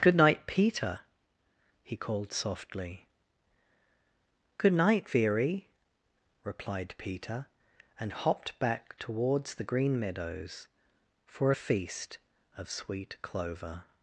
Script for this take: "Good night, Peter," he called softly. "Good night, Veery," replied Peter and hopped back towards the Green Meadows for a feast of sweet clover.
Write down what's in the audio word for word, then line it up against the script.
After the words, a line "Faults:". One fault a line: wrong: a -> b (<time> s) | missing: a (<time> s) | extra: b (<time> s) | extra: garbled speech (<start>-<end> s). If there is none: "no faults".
"Good night, Peter," he called softly. "Good night, Veery," replied Peter and hopped back towards the Green Meadows for a feast of sweet clover.
Faults:
no faults